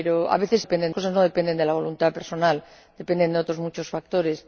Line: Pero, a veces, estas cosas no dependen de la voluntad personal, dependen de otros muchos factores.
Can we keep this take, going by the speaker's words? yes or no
no